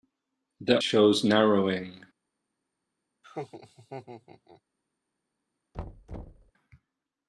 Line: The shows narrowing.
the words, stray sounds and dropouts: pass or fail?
fail